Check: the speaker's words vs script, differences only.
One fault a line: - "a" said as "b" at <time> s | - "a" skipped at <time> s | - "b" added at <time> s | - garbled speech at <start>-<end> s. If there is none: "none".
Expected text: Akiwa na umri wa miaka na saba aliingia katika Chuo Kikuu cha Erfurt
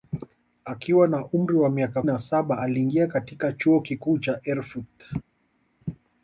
none